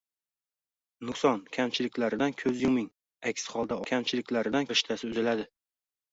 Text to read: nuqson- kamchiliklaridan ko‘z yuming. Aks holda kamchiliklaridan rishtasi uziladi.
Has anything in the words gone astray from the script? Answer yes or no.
no